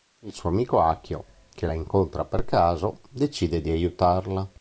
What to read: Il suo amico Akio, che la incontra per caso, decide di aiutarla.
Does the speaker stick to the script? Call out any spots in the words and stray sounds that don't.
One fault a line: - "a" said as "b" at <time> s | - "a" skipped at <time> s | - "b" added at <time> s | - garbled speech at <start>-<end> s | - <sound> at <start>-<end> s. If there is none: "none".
none